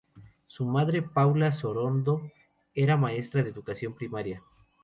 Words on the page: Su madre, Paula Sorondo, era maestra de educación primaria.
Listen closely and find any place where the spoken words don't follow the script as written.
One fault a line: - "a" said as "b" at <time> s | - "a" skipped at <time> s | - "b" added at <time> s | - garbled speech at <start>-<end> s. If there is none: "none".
none